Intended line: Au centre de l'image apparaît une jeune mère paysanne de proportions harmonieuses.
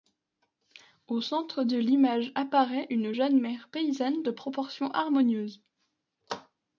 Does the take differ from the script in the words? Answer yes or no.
no